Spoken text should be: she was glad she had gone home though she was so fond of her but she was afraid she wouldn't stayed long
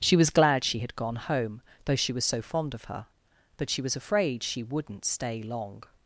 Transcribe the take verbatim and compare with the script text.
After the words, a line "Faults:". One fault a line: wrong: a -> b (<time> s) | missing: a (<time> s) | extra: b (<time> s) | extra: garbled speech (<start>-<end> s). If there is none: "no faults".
she was glad she had gone home though she was so fond of her but she was afraid she wouldn't stay long
Faults:
wrong: stayed -> stay (5.0 s)